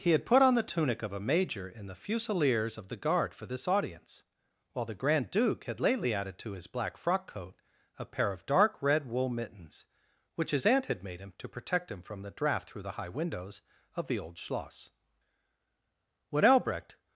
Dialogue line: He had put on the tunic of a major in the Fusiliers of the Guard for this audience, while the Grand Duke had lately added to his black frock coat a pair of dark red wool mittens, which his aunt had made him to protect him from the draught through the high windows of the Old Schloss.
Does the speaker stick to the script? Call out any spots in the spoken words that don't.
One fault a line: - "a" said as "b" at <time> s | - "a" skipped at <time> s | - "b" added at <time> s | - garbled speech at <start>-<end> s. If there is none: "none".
- "When Albrecht" added at 16.3 s